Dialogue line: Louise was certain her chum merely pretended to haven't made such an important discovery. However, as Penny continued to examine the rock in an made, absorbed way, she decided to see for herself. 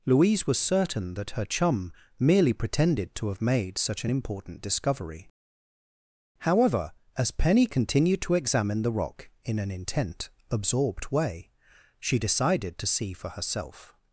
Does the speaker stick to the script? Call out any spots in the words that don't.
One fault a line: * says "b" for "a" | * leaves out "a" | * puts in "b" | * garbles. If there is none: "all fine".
* puts in "that"
* says "have" for "haven't"
* says "intent" for "made"